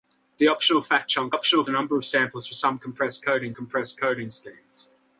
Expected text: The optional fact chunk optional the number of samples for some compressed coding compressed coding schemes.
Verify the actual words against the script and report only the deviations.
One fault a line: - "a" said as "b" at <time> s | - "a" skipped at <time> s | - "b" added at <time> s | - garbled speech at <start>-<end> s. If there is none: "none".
none